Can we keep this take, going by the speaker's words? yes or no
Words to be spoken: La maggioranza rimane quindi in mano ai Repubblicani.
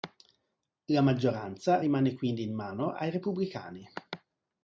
yes